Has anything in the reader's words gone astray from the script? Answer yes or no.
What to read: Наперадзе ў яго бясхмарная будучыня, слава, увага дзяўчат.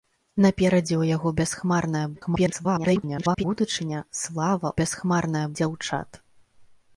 yes